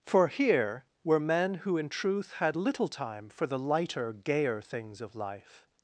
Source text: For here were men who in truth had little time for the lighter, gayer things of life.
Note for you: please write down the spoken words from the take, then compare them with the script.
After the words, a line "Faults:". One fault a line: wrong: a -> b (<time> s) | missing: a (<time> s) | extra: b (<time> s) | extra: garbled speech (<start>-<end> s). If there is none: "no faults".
For here were men who in truth had little time for the lighter, gayer things of life.
Faults:
no faults